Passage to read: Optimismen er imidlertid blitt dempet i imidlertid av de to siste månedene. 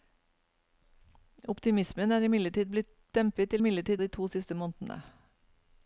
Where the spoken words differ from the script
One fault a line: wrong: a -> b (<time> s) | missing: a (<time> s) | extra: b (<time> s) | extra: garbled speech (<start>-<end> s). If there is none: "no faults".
no faults